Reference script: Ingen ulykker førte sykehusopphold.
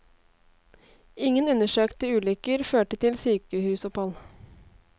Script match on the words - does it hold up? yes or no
no